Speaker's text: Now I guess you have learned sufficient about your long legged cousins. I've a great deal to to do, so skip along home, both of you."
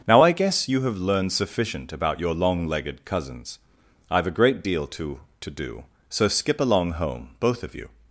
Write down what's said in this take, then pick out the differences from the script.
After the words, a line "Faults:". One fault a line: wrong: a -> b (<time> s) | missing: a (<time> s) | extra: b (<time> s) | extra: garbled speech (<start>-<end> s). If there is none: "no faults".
Now I guess you have learned sufficient about your long legged cousins. I've a great deal to to do, so skip along home, both of you."
Faults:
no faults